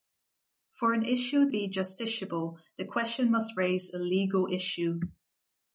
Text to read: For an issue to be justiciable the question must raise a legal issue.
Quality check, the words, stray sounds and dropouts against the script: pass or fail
fail